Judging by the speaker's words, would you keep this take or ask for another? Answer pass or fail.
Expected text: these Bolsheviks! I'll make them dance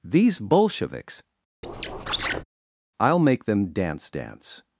fail